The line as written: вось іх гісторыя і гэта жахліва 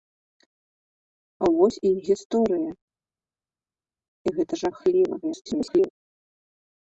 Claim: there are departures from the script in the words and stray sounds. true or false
true